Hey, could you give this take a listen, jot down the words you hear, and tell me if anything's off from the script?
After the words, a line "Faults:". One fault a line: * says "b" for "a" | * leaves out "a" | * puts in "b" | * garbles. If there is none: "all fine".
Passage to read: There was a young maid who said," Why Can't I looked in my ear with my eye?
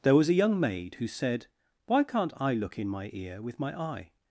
There was a young maid who said," Why Can't I look in my ear with my eye?
Faults:
* says "look" for "looked"